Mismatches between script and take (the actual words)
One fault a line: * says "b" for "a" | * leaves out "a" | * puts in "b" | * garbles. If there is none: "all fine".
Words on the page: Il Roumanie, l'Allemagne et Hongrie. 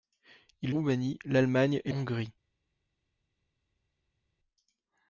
all fine